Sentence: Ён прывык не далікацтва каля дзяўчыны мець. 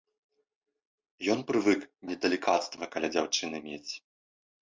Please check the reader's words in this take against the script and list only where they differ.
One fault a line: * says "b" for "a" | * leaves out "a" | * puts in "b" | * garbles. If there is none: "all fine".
all fine